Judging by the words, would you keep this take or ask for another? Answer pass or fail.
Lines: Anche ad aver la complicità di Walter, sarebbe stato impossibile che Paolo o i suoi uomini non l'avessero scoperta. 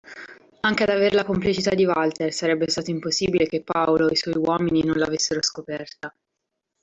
pass